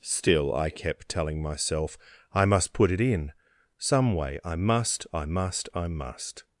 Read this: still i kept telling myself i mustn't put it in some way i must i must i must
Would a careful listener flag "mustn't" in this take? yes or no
yes